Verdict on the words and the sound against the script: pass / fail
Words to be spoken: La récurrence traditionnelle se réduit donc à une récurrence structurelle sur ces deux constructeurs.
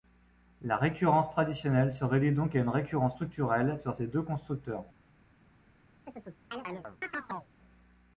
fail